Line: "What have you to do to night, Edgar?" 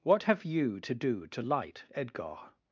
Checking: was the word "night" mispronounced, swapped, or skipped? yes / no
yes